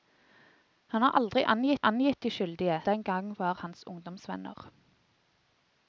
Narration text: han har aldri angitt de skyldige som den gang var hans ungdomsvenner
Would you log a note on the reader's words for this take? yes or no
yes